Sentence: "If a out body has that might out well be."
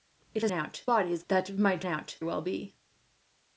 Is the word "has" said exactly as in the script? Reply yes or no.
yes